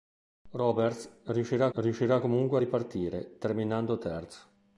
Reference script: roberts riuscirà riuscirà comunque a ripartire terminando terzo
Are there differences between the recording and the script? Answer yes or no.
no